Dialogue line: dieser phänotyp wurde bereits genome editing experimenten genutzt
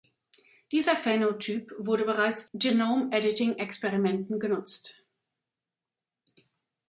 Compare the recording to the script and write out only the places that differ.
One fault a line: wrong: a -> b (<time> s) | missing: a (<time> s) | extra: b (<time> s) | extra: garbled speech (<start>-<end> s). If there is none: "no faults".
no faults